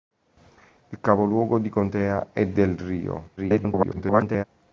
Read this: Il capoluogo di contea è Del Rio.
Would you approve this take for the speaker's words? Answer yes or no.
no